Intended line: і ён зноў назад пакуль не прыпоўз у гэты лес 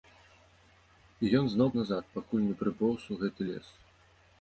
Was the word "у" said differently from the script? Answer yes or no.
no